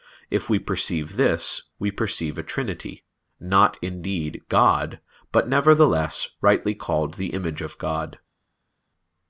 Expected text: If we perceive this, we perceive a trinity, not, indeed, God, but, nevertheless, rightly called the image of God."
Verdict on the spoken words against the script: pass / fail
pass